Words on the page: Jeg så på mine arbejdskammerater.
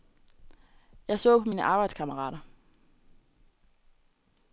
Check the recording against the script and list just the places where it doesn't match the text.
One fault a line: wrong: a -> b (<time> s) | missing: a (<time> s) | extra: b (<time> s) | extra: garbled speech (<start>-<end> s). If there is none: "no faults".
no faults